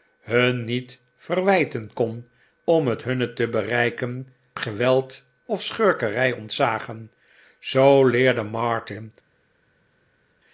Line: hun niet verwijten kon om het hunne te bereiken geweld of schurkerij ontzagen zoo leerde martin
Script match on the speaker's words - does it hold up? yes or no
yes